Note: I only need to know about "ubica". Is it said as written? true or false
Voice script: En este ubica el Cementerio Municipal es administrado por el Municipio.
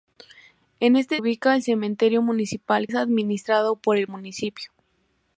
true